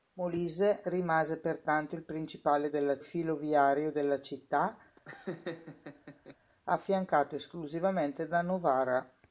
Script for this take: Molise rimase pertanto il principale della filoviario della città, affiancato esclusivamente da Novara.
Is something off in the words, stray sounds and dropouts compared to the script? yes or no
yes